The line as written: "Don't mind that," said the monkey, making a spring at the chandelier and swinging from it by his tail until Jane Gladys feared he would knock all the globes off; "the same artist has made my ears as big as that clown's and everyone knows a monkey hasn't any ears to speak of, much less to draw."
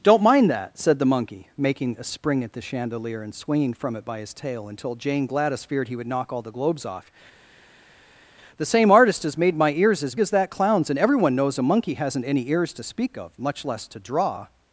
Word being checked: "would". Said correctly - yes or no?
yes